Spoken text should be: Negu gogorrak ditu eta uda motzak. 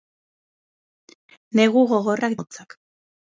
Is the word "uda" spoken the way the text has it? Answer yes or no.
no